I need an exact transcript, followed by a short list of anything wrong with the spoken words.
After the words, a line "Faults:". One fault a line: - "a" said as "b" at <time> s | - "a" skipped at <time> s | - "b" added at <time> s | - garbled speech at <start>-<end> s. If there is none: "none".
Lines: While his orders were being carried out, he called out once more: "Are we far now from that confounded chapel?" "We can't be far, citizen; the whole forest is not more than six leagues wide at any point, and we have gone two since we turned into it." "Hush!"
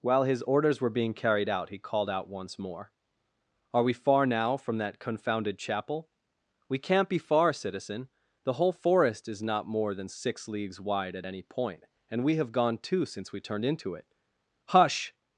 While his orders were being carried out, he called out once more: "Are we far now from that confounded chapel?" "We can't be far, citizen; the whole forest is not more than six leagues wide at any point, and we have gone two since we turned into it." "Hush!"
Faults:
none